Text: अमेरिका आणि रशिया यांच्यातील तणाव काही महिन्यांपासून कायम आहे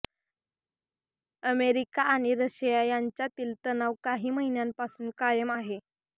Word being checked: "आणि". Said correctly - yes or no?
yes